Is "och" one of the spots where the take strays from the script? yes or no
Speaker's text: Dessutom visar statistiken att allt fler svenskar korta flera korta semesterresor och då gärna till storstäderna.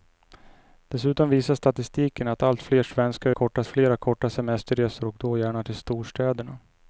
no